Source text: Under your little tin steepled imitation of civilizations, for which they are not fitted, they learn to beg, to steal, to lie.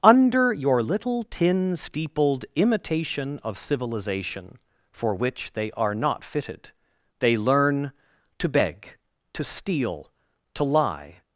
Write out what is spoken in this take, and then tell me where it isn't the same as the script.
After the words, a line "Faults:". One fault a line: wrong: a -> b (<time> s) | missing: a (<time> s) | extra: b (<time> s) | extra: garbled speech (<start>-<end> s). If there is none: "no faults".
Under your little tin steepled imitation of civilization, for which they are not fitted, they learn to beg, to steal, to lie.
Faults:
wrong: civilizations -> civilization (3.6 s)